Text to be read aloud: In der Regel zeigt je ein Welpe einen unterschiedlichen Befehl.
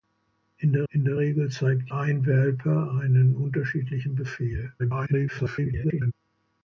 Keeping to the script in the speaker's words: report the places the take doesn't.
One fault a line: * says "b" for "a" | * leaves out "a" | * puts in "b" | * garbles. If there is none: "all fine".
* puts in "in der"
* leaves out "je"
* garbles